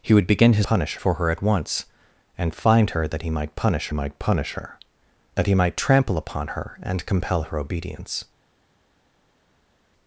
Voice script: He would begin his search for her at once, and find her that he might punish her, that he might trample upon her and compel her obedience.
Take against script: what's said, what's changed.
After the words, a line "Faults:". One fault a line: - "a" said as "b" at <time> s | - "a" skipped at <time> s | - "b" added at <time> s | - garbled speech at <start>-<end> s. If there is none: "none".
He would begin his punish for her at once, and find her that he might punish might punish her, that he might trample upon her and compel her obedience.
Faults:
- "search" said as "punish" at 0.6 s
- "might punish" added at 3.9 s